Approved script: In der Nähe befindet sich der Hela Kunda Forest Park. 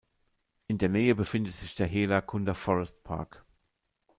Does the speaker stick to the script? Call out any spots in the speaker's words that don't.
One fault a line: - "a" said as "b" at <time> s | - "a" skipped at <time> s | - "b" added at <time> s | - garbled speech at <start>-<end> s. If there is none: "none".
none